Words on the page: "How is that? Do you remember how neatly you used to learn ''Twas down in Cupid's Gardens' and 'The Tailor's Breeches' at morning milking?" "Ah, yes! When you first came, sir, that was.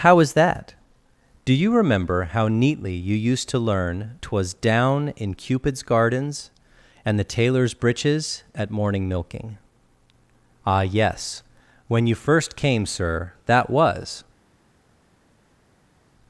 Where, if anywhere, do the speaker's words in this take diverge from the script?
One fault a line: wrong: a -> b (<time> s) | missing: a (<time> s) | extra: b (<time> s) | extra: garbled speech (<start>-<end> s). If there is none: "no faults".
no faults